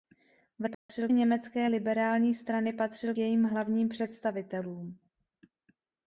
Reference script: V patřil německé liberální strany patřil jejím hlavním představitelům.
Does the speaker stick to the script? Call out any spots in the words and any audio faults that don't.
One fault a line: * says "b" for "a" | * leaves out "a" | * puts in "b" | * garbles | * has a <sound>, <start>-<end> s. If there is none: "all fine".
* has a dropout, 0.7-0.9 s